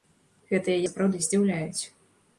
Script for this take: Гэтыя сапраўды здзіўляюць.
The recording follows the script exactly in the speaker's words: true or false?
true